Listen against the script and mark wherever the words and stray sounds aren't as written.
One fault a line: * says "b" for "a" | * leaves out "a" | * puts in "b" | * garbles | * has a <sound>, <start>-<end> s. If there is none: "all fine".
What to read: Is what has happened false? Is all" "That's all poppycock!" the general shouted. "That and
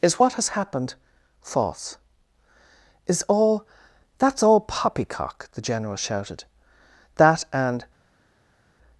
all fine